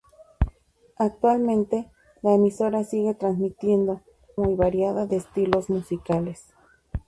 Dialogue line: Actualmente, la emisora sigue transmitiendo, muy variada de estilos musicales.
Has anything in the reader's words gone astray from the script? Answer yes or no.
no